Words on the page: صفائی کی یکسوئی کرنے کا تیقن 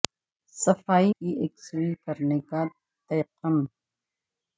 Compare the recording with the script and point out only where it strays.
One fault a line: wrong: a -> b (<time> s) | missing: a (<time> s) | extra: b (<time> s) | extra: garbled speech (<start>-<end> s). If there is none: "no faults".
no faults